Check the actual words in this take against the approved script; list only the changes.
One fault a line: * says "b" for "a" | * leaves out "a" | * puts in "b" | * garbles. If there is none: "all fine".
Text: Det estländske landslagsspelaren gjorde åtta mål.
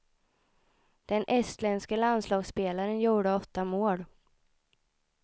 * says "Den" for "Det"